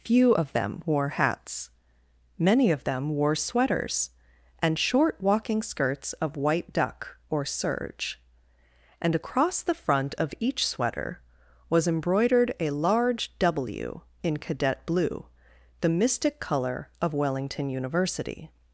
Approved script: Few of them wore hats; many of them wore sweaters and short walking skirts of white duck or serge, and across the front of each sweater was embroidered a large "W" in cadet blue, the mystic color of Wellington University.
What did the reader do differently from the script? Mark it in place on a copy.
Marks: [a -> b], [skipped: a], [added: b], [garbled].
Few of them wore hats; many of them wore sweaters and short walking skirts of white duck or serge, and across the front of each sweater was embroidered a large "W" in cadet blue, the mystic color of Wellington University.